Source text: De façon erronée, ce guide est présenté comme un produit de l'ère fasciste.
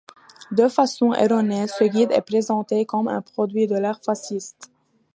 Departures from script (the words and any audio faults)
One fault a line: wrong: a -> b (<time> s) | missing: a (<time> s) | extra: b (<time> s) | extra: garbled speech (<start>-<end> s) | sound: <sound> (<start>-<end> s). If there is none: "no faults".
no faults